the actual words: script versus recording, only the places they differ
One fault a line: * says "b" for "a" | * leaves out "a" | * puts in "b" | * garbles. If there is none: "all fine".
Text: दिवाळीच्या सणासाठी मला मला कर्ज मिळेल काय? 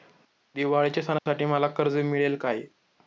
* leaves out "मला"